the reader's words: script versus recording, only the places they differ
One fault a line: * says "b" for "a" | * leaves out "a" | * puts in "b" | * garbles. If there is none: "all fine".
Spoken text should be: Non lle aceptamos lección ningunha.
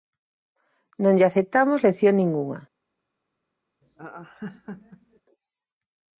all fine